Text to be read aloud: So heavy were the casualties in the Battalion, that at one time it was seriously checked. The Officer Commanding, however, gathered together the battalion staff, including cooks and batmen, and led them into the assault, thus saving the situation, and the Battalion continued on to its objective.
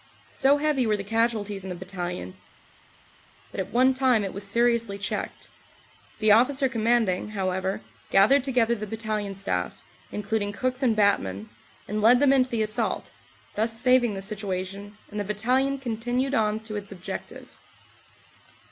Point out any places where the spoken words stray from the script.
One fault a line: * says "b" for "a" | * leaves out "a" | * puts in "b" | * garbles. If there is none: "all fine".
all fine